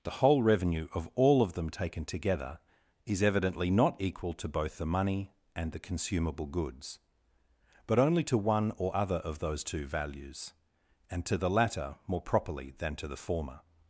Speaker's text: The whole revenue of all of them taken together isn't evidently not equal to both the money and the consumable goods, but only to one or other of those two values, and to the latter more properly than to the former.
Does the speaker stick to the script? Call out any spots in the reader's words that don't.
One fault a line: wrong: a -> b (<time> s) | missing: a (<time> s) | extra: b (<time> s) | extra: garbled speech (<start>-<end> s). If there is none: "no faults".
wrong: isn't -> is (3.0 s)